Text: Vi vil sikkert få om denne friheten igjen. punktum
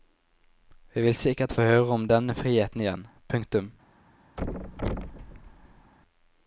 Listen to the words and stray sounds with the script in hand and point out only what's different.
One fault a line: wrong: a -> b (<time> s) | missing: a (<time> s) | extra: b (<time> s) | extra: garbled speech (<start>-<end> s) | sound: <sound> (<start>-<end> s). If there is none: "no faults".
extra: høre (1.7 s)
sound: thud (4.4-5.9 s)